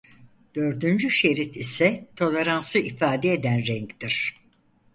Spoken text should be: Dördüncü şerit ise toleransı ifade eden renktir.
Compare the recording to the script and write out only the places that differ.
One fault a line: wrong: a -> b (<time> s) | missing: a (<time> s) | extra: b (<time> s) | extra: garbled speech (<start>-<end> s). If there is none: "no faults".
no faults